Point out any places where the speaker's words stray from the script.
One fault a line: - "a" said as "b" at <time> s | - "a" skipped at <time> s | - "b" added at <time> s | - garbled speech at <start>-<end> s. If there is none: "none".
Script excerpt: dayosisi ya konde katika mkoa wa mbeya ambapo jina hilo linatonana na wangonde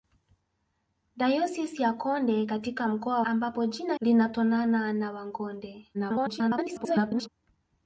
- "wa mbeya" skipped at 3.2 s
- "hilo" skipped at 3.9 s
- garbled speech at 5.9-7.3 s